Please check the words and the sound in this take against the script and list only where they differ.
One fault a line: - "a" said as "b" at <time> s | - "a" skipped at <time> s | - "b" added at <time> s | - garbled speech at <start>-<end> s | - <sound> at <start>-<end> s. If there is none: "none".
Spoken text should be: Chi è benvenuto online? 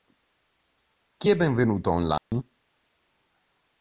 - dropout at 2.2-2.3 s